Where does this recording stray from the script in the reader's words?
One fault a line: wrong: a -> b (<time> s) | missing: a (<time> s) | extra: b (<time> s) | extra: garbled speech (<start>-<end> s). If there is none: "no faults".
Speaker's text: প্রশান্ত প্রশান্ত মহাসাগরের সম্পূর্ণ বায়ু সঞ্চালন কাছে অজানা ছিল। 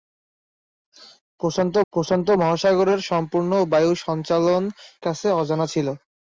no faults